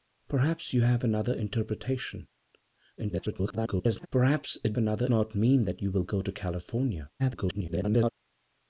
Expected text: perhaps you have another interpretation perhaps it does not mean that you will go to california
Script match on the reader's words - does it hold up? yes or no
no